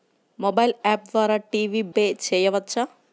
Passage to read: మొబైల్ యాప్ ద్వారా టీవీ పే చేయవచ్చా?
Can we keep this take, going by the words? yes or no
yes